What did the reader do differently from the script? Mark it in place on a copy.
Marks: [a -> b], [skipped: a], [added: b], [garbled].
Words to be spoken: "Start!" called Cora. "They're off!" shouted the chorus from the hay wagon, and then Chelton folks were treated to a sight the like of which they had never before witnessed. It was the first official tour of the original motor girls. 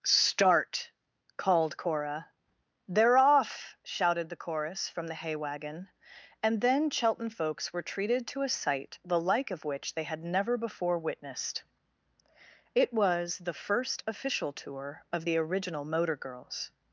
"Start!" called Cora. "They're off!" shouted the chorus from the hay wagon, and then Chelton folks were treated to a sight the like of which they had never before witnessed. It was the first official tour of the original motor girls.